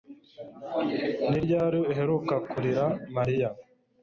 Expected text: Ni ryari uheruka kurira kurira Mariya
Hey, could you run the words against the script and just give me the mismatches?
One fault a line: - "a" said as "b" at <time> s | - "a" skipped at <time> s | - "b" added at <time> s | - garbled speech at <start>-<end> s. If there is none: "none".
- "kurira" skipped at 2.8 s